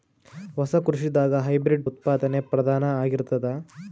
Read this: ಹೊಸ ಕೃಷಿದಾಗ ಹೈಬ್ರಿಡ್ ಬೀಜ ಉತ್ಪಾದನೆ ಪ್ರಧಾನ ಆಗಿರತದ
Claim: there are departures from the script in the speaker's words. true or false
true